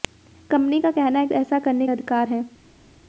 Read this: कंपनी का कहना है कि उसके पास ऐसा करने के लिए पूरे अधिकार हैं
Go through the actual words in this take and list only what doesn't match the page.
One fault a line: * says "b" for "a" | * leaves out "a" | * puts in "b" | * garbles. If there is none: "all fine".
* leaves out "कि उसके पास"
* leaves out "के लिए पूरे"